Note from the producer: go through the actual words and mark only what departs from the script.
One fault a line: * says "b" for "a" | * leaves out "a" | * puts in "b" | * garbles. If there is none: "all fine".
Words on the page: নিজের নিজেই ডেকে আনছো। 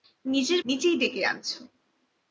all fine